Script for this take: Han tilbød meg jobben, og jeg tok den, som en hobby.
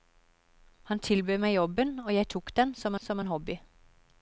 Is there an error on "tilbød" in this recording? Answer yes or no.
no